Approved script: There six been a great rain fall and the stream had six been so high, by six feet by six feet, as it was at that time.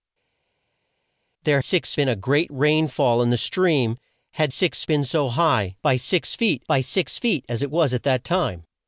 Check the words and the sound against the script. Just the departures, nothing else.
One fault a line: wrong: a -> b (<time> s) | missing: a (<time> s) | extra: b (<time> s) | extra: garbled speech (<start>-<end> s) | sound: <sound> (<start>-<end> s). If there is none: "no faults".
no faults